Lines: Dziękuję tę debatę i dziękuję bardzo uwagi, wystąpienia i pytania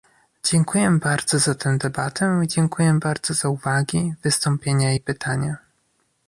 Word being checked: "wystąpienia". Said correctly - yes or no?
yes